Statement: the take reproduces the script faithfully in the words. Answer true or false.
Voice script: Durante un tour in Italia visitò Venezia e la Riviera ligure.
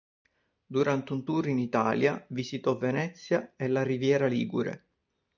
true